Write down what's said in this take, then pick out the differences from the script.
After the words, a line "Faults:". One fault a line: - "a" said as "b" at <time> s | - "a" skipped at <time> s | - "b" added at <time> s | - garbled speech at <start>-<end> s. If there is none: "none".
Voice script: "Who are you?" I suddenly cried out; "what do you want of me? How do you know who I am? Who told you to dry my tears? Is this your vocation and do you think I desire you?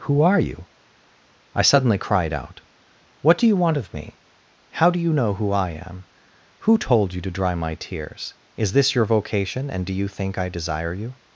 "Who are you?" I suddenly cried out; "what do you want of me? How do you know who I am? Who told you to dry my tears? Is this your vocation and do you think I desire you?
Faults:
none